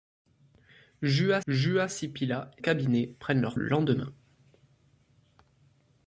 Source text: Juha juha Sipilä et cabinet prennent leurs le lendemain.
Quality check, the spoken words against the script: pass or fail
pass